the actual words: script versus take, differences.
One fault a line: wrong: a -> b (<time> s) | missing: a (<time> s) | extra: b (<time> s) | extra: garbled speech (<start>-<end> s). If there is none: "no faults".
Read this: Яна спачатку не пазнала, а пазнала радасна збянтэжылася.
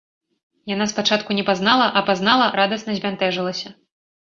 no faults